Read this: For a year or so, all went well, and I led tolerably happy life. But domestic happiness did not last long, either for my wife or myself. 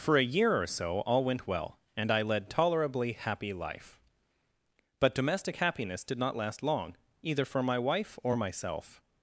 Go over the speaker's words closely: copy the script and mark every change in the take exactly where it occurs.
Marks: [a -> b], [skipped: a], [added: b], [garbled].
For a year or so, all went well, and I led tolerably happy life. But domestic happiness did not last long, either for my wife or myself.